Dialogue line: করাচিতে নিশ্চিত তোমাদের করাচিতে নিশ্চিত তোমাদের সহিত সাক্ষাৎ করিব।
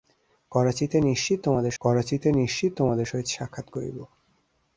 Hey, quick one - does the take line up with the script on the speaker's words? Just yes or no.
yes